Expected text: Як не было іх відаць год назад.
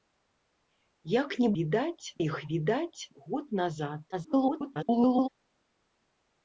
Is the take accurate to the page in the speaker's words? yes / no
no